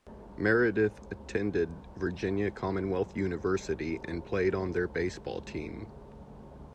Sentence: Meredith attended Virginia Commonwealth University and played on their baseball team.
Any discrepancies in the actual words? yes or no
no